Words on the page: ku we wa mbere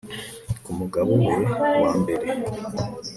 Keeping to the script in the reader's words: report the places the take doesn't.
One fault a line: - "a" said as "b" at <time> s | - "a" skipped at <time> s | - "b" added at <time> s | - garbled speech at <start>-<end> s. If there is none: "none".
- "mugabo" added at 0.8 s